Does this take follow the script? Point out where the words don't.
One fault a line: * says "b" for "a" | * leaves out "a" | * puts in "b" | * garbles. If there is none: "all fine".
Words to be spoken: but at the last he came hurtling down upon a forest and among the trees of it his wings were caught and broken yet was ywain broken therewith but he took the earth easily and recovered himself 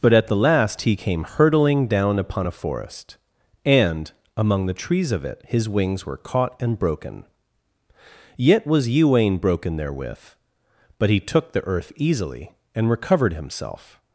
all fine